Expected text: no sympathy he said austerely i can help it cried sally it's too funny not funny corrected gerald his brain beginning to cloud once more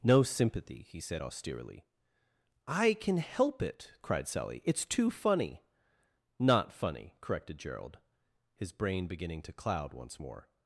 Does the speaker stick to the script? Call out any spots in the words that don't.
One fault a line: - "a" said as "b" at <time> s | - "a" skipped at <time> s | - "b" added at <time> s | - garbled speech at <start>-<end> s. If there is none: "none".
none